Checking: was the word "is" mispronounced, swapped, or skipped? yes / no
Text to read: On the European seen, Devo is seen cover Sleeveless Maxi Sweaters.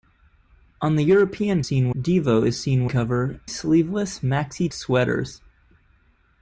no